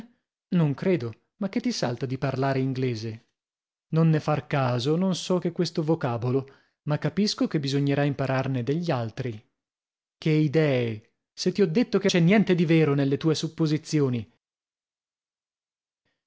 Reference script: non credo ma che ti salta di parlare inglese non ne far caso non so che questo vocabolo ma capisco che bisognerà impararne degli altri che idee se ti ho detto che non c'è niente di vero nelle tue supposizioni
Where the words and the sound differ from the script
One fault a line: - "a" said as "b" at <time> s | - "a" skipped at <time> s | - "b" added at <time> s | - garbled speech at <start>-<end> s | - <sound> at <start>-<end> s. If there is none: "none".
- "non" skipped at 12.1 s